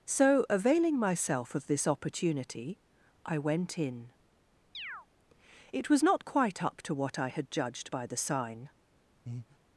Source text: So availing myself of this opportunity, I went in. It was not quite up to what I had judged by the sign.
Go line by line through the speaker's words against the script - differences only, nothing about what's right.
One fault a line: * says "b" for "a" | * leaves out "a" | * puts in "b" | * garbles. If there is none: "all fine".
all fine